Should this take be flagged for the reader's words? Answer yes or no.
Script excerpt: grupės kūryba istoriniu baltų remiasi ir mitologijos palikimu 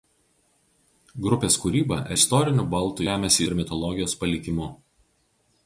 no